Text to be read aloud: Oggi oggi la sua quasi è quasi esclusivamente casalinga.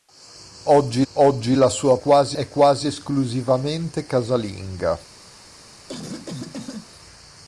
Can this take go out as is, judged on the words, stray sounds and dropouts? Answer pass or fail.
fail